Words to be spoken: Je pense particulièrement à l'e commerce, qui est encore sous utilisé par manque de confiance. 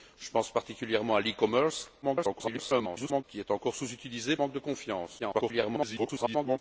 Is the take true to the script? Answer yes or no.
no